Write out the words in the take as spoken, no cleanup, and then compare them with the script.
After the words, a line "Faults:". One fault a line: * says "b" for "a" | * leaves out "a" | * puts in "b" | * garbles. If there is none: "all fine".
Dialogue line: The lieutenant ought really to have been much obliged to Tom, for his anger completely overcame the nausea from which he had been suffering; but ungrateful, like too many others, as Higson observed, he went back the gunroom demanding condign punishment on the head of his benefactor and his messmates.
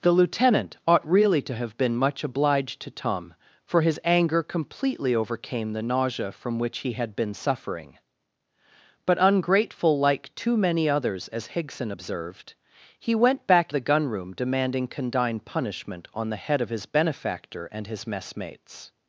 The lieutenant ought really to have been much obliged to Tom, for his anger completely overcame the nausea from which he had been suffering; but ungrateful, like too many others, as Higson observed, he went back the gunroom demanding condign punishment on the head of his benefactor and his messmates.
Faults:
all fine